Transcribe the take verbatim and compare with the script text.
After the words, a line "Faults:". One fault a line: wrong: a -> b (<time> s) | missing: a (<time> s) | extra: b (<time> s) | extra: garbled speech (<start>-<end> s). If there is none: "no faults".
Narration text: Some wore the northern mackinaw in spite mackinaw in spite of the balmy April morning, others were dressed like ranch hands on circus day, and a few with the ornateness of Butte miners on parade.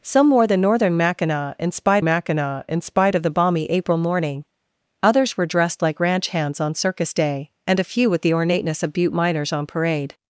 Some wore the northern mackinaw in spite mackinaw in spite of the balmy April morning, others were dressed like ranch hands on circus day, and a few with the ornateness of Butte miners on parade.
Faults:
no faults